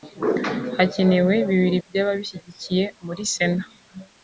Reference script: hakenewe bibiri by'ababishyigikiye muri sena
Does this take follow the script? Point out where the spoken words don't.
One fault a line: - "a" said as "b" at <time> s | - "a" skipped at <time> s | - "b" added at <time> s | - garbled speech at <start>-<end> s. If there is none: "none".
none